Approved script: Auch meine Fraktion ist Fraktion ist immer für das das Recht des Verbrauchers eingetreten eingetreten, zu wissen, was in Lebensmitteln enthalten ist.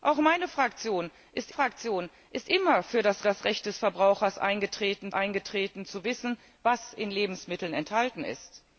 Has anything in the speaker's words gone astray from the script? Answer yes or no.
no